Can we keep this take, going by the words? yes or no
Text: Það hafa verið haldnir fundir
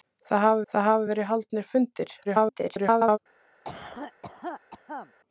no